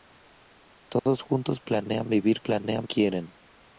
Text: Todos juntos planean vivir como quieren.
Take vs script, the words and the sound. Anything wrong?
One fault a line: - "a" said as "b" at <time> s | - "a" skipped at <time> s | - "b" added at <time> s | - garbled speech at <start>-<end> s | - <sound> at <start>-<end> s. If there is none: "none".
- dropout at 1.0-1.1 s
- "como" said as "planean" at 2.4 s